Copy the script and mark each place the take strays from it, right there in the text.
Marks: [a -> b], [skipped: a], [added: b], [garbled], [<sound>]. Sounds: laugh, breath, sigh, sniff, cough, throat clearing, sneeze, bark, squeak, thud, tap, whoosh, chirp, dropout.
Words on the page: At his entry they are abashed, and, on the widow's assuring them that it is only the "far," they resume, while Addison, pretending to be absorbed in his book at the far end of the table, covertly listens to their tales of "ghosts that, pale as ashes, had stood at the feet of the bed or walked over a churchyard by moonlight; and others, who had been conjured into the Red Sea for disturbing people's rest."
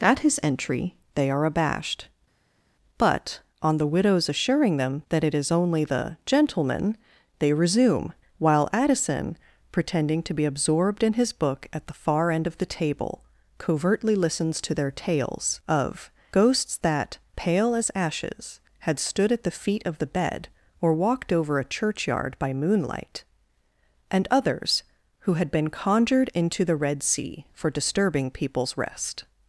At his entry they are abashed, [and, -> but] on the widow's assuring them that it is only the ["far," -> gentleman] they resume, while Addison, pretending to be absorbed in his book at the far end of the table, covertly listens to their tales of "ghosts that, pale as ashes, had stood at the feet of the bed or walked over a churchyard by moonlight; and others, who had been conjured into the Red Sea for disturbing people's rest."